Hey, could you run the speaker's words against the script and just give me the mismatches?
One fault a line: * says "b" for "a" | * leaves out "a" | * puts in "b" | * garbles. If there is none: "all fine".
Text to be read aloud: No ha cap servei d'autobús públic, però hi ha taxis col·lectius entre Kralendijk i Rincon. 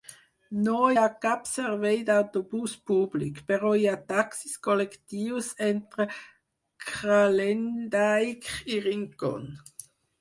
all fine